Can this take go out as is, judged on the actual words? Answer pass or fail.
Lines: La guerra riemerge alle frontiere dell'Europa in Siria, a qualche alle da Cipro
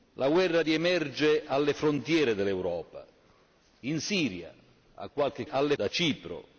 pass